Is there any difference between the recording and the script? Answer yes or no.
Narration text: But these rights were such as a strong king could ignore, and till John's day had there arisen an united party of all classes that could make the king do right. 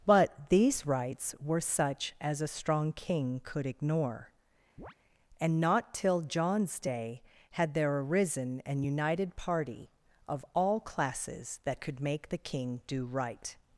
yes